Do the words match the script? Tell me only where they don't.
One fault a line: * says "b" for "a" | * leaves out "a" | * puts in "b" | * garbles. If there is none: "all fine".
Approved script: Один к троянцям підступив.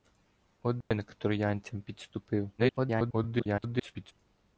* garbles